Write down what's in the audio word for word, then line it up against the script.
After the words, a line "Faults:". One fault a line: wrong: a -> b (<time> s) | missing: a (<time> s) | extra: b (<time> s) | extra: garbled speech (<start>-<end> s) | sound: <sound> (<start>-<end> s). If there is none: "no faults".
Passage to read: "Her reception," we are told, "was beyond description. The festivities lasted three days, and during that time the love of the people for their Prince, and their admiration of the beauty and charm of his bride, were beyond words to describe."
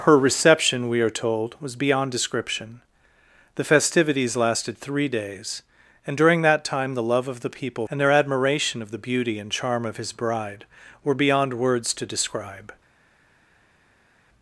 "Her reception," we are told, "was beyond description. The festivities lasted three days, and during that time the love of the people and their admiration of the beauty and charm of his bride, were beyond words to describe."
Faults:
missing: for their Prince (7.8 s)